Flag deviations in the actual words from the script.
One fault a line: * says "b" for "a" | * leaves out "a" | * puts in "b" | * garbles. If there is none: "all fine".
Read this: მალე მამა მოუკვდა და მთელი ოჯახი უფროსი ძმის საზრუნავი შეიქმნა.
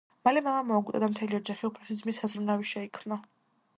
all fine